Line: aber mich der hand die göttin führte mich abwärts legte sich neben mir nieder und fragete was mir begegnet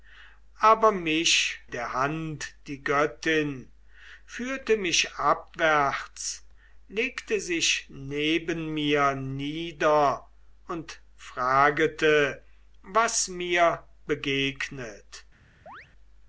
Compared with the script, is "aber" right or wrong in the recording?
right